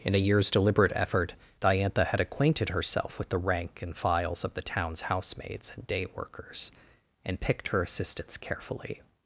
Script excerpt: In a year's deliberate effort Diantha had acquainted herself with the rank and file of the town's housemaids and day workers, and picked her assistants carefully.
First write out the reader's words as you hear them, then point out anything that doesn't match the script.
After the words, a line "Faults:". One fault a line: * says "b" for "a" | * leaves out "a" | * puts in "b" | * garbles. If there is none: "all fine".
In a year's deliberate effort Diantha had acquainted herself with the rank and files of the town's housemaids and day workers, and picked her assistants carefully.
Faults:
* says "files" for "file"